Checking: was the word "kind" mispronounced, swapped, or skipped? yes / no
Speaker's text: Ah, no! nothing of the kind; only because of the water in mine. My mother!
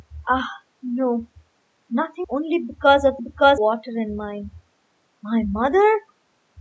yes